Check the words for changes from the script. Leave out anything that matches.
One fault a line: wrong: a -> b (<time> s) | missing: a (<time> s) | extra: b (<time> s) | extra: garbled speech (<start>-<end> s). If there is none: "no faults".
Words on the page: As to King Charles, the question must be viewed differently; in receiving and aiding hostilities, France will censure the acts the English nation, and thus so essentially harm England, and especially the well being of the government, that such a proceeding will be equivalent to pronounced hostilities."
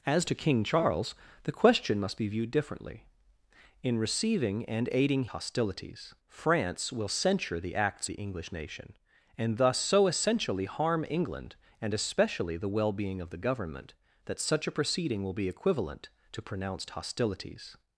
no faults